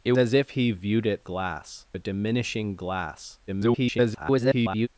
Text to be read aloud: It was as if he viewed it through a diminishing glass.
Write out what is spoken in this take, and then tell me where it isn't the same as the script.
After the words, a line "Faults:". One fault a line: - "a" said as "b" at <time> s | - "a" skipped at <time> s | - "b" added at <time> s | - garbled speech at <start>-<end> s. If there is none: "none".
It as if he viewed it glass a diminishing glass. [garbled]
Faults:
- "was" skipped at 0.1 s
- "through" said as "glass" at 1.2 s
- garbled speech at 3.5-4.9 s